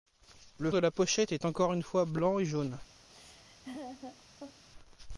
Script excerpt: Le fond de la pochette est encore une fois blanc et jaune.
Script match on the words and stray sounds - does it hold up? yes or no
no